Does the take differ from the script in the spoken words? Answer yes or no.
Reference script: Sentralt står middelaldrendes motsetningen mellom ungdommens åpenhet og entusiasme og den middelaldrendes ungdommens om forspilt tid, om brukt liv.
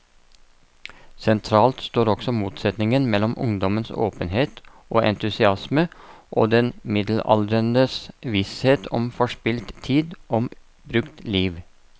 yes